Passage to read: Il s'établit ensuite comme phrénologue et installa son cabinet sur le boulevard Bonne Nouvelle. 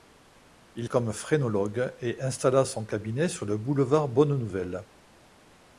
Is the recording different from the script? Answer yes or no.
yes